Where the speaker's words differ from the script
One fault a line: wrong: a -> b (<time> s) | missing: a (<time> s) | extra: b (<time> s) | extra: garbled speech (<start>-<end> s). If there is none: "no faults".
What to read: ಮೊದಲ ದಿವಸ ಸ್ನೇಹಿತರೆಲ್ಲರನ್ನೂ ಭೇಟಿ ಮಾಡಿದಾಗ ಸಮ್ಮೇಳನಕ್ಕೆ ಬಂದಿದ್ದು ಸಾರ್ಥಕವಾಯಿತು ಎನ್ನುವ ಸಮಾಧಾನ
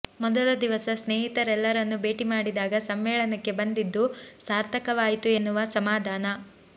no faults